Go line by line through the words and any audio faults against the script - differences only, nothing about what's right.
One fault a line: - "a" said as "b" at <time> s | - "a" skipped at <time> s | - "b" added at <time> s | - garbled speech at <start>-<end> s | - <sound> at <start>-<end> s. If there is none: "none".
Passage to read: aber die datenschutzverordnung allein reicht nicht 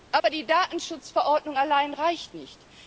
- dropout at 0.2-0.2 s